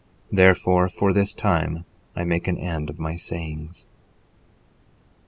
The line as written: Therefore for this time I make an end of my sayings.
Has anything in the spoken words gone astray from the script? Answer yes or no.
no